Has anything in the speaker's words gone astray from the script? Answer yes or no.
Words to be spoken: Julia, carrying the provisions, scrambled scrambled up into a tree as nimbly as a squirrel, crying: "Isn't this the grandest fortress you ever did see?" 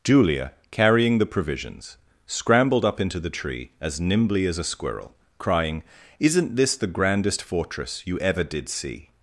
yes